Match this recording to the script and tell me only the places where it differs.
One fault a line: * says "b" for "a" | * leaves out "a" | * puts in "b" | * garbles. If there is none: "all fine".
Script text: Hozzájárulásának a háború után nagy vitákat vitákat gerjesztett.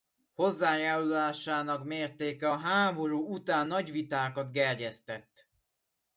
* puts in "mértéke"
* leaves out "vitákat"